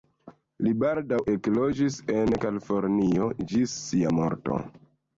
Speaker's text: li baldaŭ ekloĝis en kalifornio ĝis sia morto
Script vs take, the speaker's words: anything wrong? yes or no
no